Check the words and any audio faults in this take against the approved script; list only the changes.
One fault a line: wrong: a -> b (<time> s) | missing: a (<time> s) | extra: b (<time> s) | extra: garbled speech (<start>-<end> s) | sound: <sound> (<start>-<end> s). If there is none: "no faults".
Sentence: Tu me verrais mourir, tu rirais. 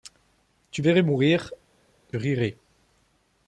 missing: me (0.8 s)
missing: tu (1.5 s)